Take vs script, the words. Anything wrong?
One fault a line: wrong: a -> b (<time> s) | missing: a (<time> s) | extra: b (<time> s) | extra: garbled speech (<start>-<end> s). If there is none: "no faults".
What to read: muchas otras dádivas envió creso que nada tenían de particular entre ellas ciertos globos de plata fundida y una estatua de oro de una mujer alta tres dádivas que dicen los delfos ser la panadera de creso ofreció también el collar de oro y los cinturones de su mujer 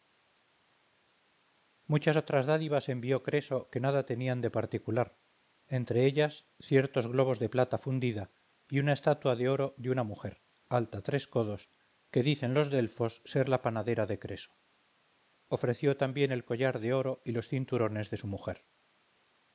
wrong: dádivas -> codos (11.3 s)